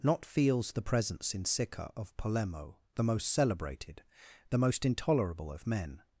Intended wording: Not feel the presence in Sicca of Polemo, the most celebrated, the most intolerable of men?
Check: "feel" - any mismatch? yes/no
yes